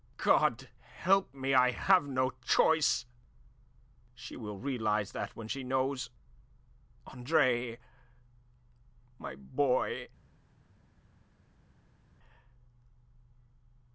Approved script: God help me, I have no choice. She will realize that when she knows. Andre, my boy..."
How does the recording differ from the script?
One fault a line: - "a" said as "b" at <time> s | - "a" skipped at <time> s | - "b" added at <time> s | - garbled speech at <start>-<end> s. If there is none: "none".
none